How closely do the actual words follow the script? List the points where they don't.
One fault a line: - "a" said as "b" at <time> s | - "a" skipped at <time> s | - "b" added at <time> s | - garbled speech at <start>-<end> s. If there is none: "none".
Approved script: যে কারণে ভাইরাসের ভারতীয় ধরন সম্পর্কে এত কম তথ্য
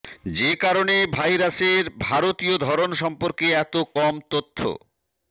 none